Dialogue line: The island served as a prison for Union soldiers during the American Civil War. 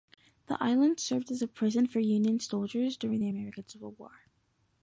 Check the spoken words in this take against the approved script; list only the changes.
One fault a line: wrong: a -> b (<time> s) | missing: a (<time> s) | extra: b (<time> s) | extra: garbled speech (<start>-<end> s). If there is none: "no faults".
no faults